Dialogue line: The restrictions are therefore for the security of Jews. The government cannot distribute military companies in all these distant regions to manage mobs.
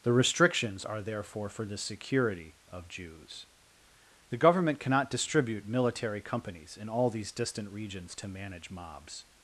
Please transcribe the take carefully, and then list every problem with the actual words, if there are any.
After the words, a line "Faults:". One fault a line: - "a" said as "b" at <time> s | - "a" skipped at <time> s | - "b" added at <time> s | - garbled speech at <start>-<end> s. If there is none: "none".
The restrictions are therefore for the security of Jews. The government cannot distribute military companies in all these distant regions to manage mobs.
Faults:
none